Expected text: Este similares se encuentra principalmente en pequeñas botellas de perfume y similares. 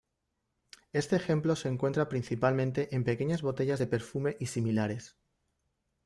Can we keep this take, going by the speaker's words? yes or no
no